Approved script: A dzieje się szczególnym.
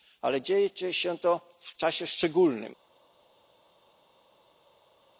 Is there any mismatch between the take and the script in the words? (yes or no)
yes